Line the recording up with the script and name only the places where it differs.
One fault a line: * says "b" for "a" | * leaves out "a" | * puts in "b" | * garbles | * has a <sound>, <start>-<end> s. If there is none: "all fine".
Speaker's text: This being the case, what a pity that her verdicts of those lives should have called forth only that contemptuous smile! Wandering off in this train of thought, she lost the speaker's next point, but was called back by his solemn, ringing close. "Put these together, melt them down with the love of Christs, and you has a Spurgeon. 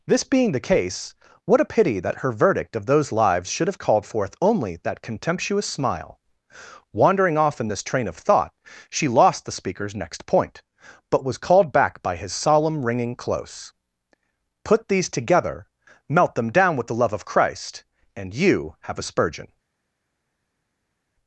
* says "verdict" for "verdicts"
* says "Christ" for "Christs"
* says "have" for "has"